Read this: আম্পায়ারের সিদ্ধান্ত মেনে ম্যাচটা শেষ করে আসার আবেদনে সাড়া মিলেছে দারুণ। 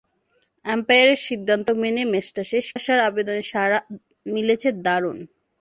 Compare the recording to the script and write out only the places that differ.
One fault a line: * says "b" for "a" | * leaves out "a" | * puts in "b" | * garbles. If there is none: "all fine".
* leaves out "করে"